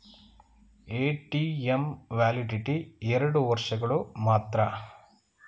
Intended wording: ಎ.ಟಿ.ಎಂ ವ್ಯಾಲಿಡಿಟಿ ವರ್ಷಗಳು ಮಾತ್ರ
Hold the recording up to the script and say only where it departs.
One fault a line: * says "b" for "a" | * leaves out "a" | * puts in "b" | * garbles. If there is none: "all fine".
* puts in "ಎರಡು"